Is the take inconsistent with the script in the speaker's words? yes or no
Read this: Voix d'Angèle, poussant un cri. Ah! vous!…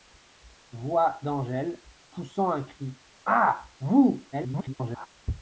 yes